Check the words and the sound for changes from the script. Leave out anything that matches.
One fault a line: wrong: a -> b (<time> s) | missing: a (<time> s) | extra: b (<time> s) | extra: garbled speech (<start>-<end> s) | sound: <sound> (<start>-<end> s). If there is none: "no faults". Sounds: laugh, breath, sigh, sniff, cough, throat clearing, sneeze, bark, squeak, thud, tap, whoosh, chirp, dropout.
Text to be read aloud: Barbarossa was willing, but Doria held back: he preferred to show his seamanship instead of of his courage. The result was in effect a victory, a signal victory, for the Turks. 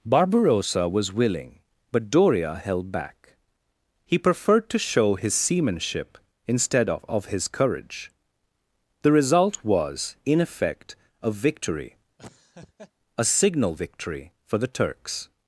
sound: laugh (12.2-12.9 s)